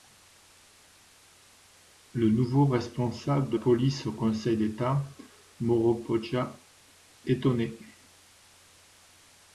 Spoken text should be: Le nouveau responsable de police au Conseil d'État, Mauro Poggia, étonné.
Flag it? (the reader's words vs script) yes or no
no